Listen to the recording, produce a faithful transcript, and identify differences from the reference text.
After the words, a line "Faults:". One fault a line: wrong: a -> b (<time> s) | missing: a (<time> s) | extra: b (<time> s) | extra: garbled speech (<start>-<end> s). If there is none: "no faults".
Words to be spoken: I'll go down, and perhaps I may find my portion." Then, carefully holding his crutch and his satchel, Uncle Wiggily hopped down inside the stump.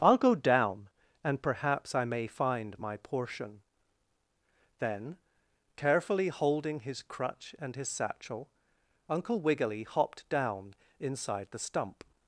I'll go down, and perhaps I may find my portion." Then, carefully holding his crutch and his satchel, Uncle Wiggily hopped down inside the stump.
Faults:
no faults